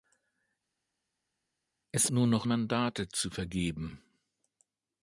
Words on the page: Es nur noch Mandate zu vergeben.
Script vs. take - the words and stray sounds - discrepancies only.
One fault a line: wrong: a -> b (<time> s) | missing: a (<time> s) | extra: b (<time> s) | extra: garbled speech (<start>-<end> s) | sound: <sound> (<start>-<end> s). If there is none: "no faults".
no faults